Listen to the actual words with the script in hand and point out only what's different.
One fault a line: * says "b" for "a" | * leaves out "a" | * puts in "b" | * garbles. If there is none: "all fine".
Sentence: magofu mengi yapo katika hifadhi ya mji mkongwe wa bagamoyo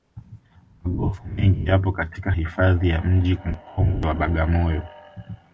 all fine